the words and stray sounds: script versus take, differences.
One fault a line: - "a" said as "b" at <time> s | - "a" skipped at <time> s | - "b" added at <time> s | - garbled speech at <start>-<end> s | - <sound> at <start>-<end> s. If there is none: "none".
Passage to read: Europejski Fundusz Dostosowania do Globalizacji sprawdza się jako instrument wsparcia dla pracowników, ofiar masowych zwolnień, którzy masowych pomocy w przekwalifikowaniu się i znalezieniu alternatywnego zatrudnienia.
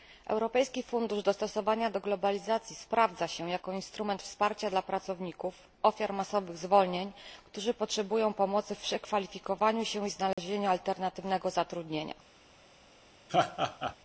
- "masowych" said as "potrzebują" at 7.7 s
- dropout at 10.3-10.4 s
- laugh at 13.3-14.0 s